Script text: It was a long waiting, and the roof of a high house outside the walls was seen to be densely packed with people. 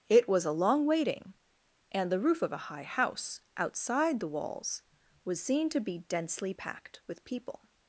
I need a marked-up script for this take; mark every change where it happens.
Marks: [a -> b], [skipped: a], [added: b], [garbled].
It was a long waiting, and the roof of a high house outside the walls was seen to be densely packed with people.